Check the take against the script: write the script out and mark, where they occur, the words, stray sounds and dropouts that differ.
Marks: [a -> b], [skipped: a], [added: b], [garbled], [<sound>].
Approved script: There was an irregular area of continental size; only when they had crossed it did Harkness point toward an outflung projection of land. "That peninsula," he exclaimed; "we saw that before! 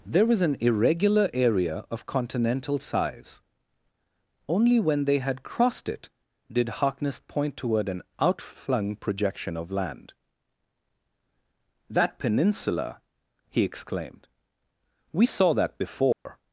There was an irregular area of continental size; only when they had crossed it did Harkness point toward an outflung projection of land. "That peninsula," he exclaimed; "we saw that before! [dropout]